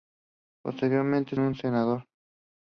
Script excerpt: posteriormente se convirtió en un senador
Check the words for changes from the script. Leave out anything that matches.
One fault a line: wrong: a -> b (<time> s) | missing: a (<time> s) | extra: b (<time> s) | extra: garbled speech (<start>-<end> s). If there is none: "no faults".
missing: se convirtió en (1.4 s)